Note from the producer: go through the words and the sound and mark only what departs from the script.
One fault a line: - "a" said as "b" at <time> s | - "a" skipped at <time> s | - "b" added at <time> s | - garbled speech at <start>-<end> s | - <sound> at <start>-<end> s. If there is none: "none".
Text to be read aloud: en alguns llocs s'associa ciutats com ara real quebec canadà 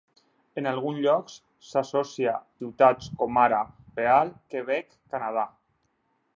none